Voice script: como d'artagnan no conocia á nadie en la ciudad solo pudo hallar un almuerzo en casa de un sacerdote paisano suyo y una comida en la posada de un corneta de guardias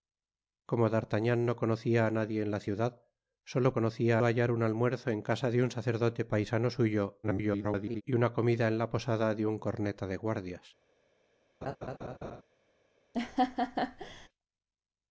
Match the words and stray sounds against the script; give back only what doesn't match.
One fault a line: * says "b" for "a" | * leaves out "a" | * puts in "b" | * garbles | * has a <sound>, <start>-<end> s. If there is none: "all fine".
* says "conocia" for "pudo"
* garbles
* has a laugh, 11.6-12.4 s
* has a laugh, 13.1-14.3 s